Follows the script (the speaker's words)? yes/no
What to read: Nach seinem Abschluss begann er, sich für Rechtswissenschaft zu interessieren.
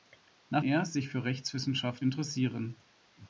no